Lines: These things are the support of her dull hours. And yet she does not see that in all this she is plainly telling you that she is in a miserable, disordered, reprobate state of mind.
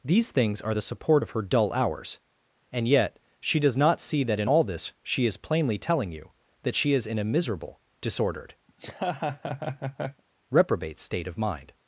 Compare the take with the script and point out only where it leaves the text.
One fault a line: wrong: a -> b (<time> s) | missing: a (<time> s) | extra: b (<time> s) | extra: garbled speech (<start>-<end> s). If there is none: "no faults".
no faults